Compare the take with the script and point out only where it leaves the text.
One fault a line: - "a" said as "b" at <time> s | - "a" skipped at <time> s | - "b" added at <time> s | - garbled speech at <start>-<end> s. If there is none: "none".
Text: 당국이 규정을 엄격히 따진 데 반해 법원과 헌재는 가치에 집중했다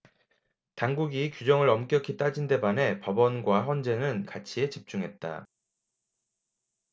none